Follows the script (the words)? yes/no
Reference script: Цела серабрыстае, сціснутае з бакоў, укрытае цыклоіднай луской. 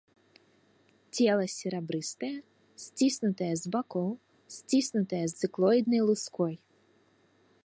no